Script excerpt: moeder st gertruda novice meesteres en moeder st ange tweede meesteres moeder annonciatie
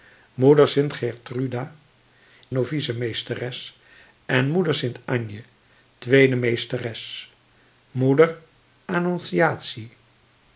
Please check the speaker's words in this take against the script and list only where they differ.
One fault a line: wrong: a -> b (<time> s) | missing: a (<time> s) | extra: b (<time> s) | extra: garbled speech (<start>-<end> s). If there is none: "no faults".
no faults